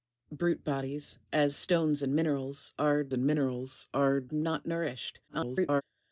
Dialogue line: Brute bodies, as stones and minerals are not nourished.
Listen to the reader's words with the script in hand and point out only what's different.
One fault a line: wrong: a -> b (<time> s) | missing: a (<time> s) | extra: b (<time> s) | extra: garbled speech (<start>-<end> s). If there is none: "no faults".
extra: and minerals are (3.1 s)
extra: garbled speech (5.3-5.8 s)